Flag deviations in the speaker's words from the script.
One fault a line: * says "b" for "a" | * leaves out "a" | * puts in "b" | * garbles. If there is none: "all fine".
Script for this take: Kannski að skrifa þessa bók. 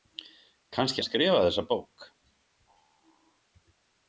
all fine